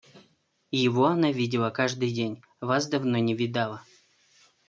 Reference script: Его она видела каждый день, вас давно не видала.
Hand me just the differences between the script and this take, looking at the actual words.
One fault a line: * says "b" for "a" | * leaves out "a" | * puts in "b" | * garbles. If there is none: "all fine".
all fine